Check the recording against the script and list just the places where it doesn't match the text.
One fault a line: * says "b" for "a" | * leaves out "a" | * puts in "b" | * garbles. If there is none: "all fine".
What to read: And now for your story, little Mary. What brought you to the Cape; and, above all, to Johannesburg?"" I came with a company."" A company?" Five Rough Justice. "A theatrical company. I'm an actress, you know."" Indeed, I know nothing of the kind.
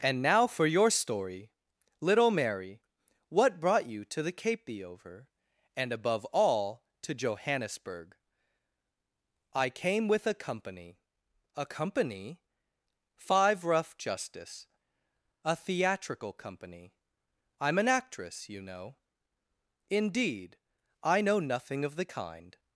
* puts in "the over"